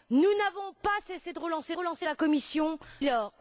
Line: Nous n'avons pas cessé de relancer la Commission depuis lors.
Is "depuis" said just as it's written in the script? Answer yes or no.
no